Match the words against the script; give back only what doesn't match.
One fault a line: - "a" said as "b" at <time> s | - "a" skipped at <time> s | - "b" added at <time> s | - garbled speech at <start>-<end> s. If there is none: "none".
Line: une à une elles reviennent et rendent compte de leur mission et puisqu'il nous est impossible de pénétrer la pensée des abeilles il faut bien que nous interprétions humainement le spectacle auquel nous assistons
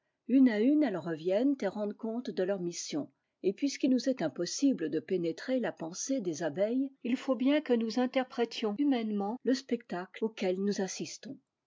none